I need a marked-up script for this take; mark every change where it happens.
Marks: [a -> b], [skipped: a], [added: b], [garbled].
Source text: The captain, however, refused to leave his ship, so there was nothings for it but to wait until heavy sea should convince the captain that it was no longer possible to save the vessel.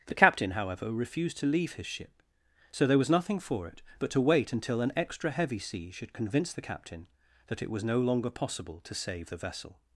The captain, however, refused to leave his ship, so there was [nothings -> nothing] for it but to wait until [added: an extra] heavy sea should convince the captain that it was no longer possible to save the vessel.